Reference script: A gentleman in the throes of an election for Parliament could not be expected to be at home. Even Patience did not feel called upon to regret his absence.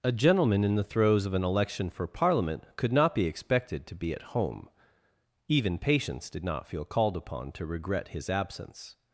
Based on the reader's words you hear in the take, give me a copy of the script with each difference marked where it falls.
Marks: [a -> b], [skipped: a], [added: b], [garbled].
A gentleman in the throes of an election for Parliament could not be expected to be at home. Even Patience did not feel called upon to regret his absence.